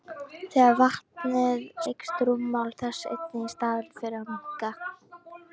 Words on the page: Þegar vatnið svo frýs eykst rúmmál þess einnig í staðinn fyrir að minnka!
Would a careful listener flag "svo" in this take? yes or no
yes